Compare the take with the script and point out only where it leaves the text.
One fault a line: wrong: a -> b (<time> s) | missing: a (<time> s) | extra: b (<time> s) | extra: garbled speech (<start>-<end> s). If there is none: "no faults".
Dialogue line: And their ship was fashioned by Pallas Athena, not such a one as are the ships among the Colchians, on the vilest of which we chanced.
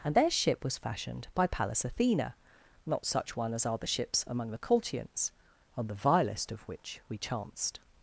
missing: a (3.3 s)